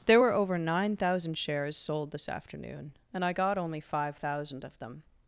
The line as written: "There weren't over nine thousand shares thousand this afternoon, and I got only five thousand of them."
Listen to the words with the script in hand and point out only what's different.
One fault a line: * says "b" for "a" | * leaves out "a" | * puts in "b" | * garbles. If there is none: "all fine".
* says "were" for "weren't"
* says "sold" for "thousand"